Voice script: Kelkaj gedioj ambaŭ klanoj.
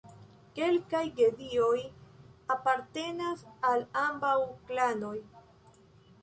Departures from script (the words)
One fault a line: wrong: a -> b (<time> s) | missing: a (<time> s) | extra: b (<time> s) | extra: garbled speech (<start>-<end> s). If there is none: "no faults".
extra: apartenas al (2.5 s)